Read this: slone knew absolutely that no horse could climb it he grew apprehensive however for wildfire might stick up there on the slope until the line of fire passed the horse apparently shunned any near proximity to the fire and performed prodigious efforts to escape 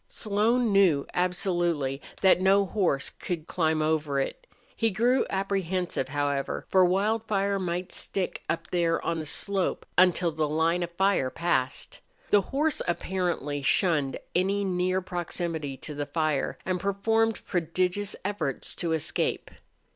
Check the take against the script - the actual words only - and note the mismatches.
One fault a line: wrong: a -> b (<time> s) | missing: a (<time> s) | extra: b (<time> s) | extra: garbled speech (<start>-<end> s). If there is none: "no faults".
extra: over (3.8 s)